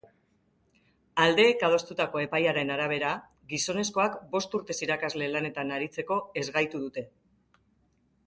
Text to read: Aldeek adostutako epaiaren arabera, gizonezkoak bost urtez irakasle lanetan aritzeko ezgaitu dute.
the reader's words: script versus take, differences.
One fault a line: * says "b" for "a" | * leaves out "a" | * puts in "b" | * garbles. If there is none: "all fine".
all fine